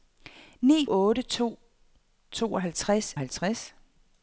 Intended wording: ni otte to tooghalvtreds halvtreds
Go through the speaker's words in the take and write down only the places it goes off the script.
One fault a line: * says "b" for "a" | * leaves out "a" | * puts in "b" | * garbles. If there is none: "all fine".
all fine